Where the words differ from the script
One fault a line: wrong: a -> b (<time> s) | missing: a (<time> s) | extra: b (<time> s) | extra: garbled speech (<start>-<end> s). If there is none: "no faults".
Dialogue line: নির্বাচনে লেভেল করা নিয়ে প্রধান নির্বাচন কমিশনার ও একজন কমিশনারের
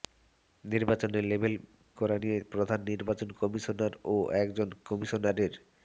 no faults